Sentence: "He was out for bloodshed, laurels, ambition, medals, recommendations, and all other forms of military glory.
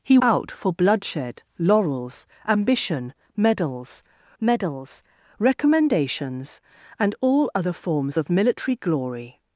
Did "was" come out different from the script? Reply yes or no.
yes